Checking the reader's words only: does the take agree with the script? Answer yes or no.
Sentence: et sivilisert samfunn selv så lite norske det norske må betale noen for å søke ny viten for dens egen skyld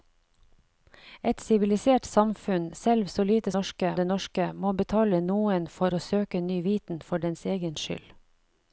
yes